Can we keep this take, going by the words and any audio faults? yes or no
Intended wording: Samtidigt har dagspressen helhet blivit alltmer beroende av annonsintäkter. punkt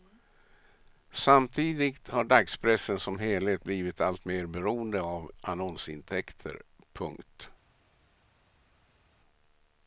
no